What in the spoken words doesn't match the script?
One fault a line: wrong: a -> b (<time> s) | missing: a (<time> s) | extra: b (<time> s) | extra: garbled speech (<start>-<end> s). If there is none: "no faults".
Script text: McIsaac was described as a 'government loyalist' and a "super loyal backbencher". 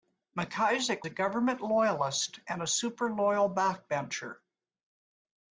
missing: was described as (1.1 s)